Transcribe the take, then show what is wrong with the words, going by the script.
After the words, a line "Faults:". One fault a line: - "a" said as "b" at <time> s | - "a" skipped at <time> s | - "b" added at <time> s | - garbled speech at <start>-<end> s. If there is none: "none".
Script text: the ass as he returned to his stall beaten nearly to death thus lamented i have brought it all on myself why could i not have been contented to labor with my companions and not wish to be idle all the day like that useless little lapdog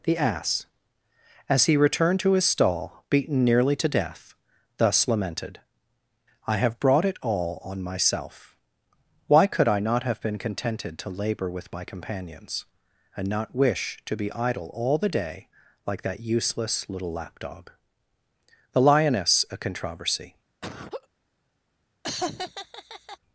the ass as he returned to his stall beaten nearly to death thus lamented i have brought it all on myself why could i not have been contented to labor with my companions and not wish to be idle all the day like that useless little lapdog the lioness a controversy
Faults:
- "the lioness a controversy" added at 18.7 s